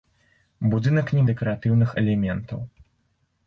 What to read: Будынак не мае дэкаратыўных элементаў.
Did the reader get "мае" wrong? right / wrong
wrong